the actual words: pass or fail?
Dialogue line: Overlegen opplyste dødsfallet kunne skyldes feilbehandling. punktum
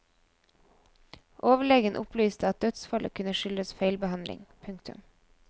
fail